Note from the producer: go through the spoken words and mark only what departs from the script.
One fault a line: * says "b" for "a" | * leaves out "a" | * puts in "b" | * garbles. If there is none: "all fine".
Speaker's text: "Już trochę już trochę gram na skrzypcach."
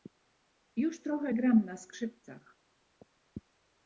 * leaves out "już trochę"